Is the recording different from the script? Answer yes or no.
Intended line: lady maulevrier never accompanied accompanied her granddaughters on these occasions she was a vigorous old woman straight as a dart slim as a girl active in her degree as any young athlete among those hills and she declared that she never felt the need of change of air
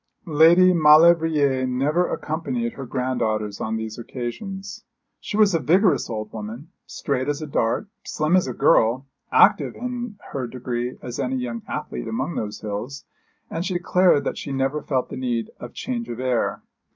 yes